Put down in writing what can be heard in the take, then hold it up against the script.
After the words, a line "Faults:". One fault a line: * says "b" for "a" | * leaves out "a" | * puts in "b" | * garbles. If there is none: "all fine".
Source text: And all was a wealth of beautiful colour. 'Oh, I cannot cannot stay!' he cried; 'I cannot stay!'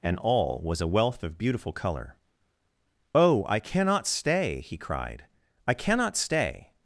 And all was a wealth of beautiful colour. 'Oh, I cannot stay!' he cried; 'I cannot stay!'
Faults:
* leaves out "cannot"